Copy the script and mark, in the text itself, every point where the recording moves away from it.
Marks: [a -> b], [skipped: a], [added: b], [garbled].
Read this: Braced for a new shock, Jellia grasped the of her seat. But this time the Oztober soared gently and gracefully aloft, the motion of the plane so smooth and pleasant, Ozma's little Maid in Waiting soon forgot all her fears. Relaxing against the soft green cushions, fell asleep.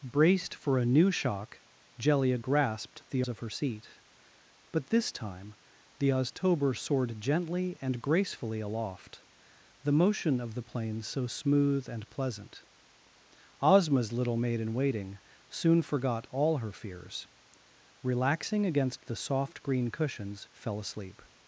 Braced for a new shock, Jellia grasped the of her seat. But this time the Oztober soared gently and gracefully aloft, the motion of the plane so smooth and pleasant, Ozma's little Maid in Waiting soon forgot all her fears. Relaxing against the soft green cushions, fell asleep.